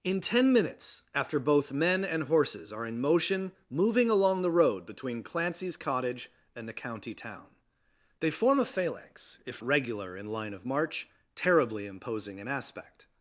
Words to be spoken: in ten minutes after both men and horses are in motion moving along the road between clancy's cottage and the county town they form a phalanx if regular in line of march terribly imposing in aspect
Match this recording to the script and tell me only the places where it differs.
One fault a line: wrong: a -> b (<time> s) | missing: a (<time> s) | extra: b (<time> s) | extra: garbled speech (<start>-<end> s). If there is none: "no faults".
no faults